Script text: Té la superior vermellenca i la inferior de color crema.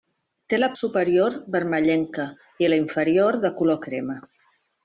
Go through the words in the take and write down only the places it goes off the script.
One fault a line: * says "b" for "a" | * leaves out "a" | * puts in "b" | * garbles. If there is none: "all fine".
all fine